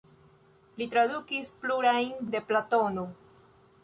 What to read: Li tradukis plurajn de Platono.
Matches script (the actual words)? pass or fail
pass